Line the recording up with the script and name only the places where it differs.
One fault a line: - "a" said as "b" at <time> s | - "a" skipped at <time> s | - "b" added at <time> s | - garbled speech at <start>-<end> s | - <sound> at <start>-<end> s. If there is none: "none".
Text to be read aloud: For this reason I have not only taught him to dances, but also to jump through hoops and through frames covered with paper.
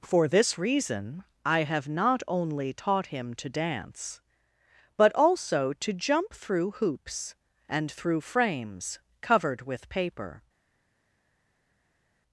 - "dances" said as "dance" at 3.5 s